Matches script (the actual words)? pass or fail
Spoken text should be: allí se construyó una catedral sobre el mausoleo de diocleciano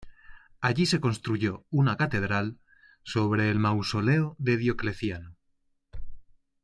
pass